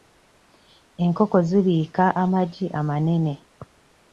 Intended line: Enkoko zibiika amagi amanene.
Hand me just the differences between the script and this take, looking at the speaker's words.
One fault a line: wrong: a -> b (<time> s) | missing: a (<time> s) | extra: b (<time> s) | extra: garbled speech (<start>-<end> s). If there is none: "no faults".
no faults